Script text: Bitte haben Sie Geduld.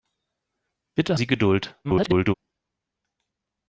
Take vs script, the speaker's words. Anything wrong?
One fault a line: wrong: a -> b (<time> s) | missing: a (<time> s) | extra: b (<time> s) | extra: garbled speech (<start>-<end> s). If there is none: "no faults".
missing: haben (1.2 s)
extra: garbled speech (1.8-2.3 s)